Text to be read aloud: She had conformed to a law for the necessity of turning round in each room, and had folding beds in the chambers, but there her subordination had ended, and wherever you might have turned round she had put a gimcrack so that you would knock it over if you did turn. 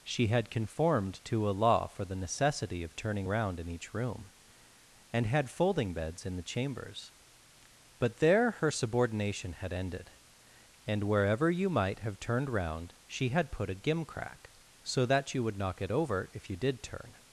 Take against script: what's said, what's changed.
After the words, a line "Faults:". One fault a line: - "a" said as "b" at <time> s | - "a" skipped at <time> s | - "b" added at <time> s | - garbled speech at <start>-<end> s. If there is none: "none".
She had conformed to a law for the necessity of turning round in each room, and had folding beds in the chambers, but there her subordination had ended, and wherever you might have turned round she had put a gimcrack so that you would knock it over if you did turn.
Faults:
none